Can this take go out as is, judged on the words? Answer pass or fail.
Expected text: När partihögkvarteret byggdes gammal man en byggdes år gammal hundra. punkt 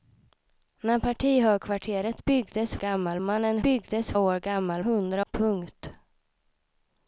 pass